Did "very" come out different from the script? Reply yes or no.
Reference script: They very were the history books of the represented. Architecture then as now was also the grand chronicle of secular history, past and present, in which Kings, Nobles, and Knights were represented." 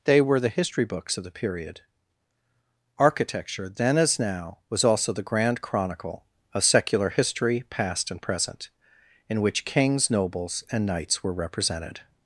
yes